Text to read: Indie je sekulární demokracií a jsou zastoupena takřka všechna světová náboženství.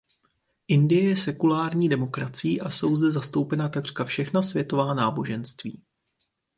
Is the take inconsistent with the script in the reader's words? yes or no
yes